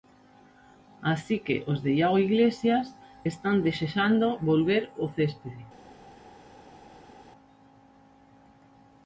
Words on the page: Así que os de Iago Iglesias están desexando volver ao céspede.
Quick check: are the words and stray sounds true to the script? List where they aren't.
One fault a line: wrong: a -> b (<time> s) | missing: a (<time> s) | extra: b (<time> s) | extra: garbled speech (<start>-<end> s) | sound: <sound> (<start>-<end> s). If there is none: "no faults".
no faults